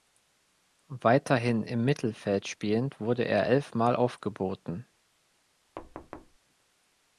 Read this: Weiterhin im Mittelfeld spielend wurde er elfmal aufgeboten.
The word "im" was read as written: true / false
true